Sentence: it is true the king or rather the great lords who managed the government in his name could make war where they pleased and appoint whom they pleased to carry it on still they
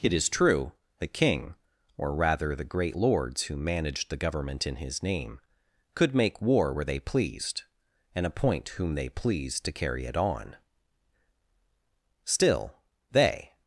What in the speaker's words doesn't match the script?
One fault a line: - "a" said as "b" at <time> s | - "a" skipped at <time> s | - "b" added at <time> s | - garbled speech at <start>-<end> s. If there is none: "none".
none